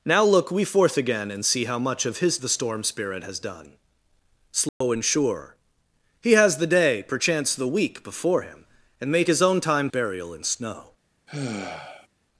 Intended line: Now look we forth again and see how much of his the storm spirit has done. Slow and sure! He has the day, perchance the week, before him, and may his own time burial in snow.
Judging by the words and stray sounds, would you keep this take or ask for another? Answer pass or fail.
fail